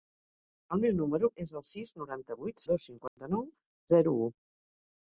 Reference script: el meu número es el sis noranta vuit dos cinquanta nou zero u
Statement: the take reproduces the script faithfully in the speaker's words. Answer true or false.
true